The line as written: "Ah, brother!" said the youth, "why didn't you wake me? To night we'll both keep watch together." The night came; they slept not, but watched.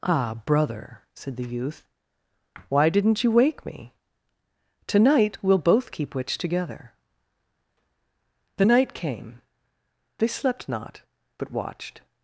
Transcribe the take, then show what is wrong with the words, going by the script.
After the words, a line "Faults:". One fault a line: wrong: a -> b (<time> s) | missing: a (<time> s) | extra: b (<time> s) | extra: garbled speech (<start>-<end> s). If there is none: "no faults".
"Ah, brother!" said the youth, "why didn't you wake me? To night we'll both keep witch together." The night came; they slept not, but watched.
Faults:
wrong: watch -> witch (6.2 s)